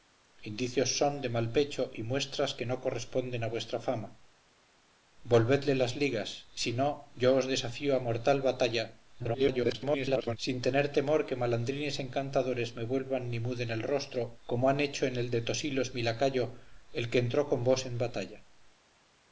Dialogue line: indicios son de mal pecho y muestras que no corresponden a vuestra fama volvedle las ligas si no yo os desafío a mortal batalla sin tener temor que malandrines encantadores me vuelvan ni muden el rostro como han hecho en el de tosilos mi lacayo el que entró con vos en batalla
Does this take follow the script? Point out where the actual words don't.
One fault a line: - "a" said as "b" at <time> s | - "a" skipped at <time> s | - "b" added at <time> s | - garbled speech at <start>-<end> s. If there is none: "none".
- garbled speech at 9.2-10.4 s